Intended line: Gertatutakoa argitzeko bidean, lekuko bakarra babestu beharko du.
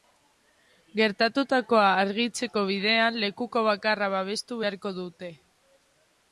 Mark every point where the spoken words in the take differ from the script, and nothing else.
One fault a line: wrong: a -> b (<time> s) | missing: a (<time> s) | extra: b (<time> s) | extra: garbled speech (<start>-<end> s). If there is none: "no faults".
wrong: du -> dute (5.0 s)